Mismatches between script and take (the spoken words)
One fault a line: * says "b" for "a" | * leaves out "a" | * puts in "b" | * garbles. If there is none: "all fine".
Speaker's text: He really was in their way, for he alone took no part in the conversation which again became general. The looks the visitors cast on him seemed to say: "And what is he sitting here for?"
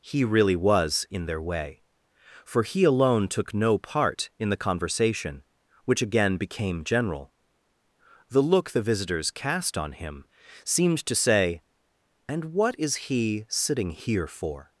* says "look" for "looks"